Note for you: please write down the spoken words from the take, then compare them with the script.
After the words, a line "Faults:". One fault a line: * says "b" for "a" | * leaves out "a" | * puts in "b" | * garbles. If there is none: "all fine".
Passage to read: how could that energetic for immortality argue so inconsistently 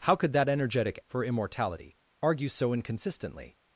how could that energetic for immortality argue so inconsistently
Faults:
all fine